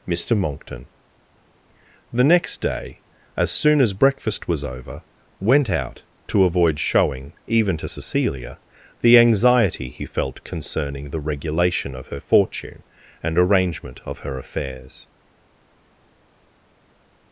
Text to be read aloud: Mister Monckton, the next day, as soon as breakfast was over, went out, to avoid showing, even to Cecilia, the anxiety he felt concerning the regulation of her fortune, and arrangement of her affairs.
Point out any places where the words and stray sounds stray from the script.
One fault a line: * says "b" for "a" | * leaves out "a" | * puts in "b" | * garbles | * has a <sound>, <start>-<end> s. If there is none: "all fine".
all fine